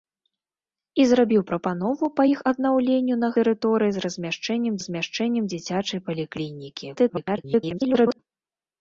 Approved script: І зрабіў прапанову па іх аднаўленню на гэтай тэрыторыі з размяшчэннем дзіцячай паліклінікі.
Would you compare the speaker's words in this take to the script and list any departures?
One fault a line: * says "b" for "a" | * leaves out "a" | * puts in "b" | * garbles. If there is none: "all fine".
* leaves out "гэтай"
* puts in "размяшчэннем"
* garbles